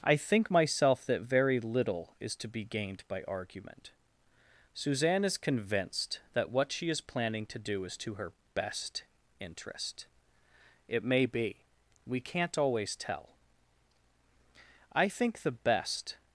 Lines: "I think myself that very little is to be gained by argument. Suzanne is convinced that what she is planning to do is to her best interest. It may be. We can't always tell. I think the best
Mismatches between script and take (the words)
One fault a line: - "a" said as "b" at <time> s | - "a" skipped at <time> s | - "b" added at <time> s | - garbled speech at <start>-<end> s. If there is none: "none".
none